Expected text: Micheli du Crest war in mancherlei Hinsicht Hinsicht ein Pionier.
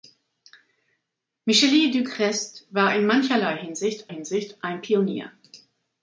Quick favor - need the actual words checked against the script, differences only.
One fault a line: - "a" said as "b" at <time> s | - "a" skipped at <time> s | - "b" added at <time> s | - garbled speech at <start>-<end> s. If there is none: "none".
none